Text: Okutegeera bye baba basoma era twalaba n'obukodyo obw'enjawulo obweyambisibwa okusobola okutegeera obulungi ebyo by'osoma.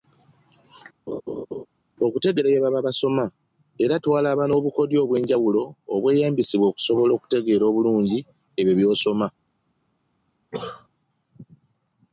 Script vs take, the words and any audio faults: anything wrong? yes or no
yes